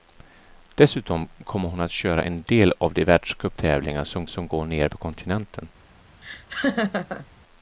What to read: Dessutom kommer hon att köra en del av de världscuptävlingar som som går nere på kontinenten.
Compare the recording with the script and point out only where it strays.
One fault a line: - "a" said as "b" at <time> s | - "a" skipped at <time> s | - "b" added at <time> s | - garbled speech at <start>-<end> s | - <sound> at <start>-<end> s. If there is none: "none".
- laugh at 6.2-7.3 s